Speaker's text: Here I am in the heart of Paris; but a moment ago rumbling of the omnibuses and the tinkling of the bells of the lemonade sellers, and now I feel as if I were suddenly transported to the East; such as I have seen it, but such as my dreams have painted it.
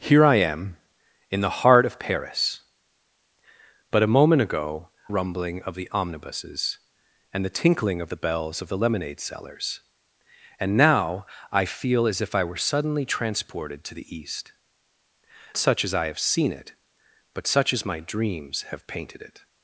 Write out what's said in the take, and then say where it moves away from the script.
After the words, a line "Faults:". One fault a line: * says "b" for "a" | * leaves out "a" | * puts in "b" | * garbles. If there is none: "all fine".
Here I am in the heart of Paris; but a moment ago rumbling of the omnibuses and the tinkling of the bells of the lemonade sellers, and now I feel as if I were suddenly transported to the East; such as I have seen it, but such as my dreams have painted it.
Faults:
all fine